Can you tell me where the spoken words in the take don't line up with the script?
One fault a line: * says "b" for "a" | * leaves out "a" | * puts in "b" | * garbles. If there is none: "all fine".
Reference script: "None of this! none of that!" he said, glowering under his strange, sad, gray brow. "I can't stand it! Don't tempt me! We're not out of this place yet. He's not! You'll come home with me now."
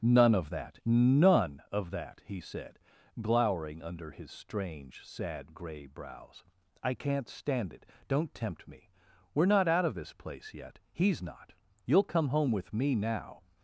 * says "that" for "this"
* says "brows" for "brow"